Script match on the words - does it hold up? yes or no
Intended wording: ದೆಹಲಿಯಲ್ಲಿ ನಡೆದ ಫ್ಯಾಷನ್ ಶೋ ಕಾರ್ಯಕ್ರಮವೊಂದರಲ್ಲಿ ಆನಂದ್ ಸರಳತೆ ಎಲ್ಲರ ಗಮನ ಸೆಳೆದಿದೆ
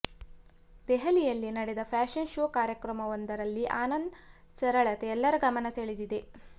yes